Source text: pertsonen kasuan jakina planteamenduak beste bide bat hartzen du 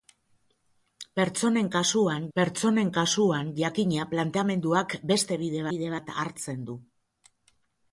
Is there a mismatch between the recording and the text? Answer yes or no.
yes